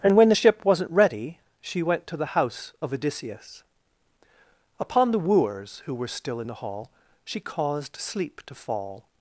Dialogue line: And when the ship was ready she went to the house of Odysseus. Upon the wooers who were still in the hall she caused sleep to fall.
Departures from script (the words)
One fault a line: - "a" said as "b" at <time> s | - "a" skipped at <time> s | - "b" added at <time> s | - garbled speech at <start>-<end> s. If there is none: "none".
- "was" said as "wasn't" at 0.6 s